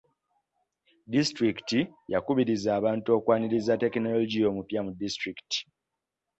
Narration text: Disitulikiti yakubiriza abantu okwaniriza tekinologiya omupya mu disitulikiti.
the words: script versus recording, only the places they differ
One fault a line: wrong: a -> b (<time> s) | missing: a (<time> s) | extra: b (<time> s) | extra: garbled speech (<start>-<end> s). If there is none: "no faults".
no faults